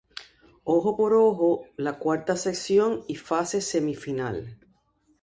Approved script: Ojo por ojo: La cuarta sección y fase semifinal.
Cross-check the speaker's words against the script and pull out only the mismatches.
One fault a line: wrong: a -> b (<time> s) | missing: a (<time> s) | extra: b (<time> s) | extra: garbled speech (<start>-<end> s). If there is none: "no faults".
no faults